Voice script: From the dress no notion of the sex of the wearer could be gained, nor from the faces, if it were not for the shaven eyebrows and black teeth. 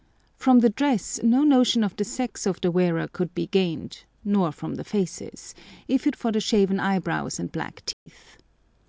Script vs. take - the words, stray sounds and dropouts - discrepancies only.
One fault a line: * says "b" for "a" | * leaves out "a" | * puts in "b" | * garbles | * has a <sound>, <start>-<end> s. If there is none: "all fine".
* leaves out "were not"
* has a dropout, 7.9-8.1 s